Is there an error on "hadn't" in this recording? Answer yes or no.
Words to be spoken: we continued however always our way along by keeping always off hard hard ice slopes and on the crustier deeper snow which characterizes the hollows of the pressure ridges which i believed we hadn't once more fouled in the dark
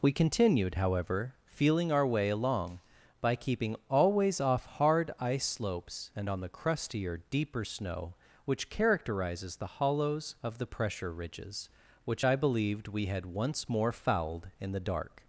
yes